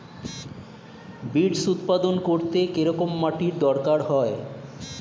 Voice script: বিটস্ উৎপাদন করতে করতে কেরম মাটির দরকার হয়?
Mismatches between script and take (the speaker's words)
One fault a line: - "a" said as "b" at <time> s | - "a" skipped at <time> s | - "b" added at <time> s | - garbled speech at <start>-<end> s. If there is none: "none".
- "করতে" skipped at 2.6 s